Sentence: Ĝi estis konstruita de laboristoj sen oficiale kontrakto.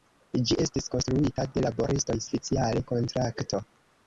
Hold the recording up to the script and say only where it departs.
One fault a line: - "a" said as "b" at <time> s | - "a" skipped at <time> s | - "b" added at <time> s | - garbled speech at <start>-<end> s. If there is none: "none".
- "sen" skipped at 2.2 s